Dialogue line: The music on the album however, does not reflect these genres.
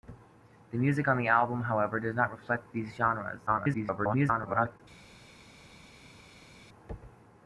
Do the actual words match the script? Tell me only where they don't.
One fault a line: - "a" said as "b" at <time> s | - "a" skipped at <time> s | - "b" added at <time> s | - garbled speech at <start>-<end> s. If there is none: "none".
- garbled speech at 3.5-4.8 s